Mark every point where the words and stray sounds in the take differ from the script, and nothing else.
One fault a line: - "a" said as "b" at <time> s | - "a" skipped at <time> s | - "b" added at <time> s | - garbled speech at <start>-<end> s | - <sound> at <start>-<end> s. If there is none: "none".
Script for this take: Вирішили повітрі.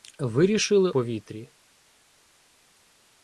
none